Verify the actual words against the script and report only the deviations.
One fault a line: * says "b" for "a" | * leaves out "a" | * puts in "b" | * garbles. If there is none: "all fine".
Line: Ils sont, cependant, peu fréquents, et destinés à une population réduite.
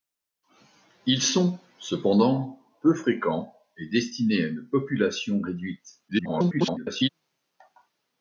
* garbles